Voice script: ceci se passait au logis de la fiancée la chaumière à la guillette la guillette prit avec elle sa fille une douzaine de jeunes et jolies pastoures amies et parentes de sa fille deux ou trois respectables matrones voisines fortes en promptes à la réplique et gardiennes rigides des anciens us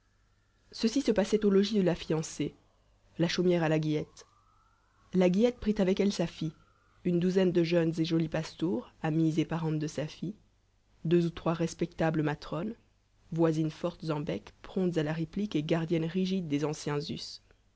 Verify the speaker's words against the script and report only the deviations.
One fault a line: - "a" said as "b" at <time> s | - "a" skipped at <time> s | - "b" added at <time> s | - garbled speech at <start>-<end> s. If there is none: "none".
- "bec" added at 14.2 s